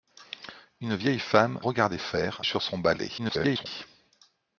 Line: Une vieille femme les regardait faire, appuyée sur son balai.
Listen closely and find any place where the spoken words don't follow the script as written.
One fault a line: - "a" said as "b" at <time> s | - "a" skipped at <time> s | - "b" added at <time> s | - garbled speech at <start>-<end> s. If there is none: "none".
- "les" skipped at 1.6 s
- "appuyée" skipped at 2.4 s
- garbled speech at 3.2-3.7 s